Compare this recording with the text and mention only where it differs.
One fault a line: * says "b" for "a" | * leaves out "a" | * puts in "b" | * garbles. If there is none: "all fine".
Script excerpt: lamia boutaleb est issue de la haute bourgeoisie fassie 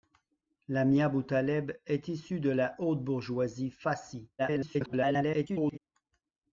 * garbles